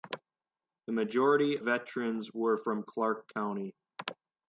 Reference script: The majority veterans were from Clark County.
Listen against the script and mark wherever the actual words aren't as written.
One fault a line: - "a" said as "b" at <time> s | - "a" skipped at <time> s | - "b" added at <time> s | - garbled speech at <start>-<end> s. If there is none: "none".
none